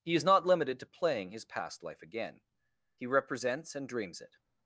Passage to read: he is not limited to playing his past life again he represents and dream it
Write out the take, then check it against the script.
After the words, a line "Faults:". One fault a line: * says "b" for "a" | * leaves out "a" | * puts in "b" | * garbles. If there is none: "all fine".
he is not limited to playing his past life again he represents and dreams it
Faults:
* says "dreams" for "dream"